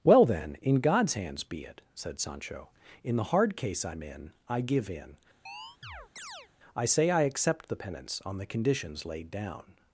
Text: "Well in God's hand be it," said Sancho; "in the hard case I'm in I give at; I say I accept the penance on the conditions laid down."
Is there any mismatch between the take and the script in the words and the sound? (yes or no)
yes